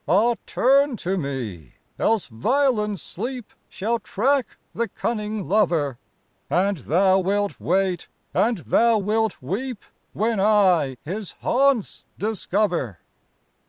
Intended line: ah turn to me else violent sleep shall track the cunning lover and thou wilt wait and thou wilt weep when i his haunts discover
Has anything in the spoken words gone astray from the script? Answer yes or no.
no